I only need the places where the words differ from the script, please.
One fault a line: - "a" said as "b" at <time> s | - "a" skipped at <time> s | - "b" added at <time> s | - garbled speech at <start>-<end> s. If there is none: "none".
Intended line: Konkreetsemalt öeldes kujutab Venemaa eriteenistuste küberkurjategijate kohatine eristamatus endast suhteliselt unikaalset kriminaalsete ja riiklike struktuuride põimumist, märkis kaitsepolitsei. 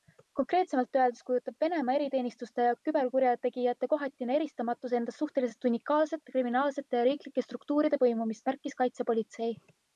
- "ja" added at 2.7 s